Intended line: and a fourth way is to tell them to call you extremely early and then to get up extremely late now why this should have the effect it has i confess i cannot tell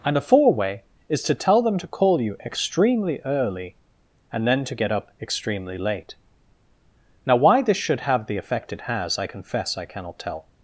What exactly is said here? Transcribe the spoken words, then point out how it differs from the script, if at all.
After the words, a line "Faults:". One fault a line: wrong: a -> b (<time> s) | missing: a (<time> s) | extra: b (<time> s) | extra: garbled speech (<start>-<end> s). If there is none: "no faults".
and a four way is to tell them to call you extremely early and then to get up extremely late now why this should have the effect it has i confess i cannot tell
Faults:
wrong: fourth -> four (0.2 s)